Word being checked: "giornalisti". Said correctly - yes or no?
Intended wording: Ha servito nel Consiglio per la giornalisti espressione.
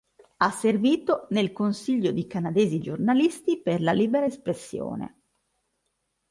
no